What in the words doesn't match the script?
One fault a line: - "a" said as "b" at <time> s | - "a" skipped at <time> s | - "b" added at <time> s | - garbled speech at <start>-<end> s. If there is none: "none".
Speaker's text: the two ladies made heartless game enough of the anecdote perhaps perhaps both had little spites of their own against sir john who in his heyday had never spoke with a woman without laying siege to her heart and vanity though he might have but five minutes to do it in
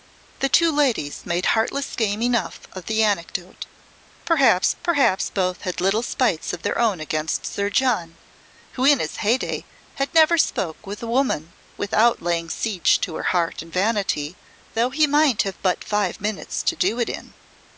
none